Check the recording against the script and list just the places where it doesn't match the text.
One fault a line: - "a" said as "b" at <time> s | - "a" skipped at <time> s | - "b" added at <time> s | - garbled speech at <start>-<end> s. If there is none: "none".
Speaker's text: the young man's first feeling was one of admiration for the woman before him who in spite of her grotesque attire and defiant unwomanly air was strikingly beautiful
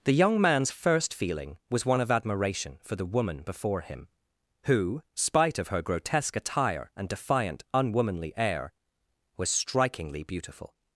- "in" skipped at 5.0 s